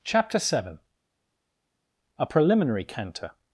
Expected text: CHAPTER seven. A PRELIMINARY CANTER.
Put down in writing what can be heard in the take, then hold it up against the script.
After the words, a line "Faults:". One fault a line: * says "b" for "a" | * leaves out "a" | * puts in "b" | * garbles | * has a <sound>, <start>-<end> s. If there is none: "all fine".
CHAPTER seven. A PRELIMINARY CANTER.
Faults:
all fine